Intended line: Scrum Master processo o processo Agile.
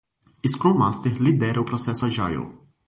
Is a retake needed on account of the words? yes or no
yes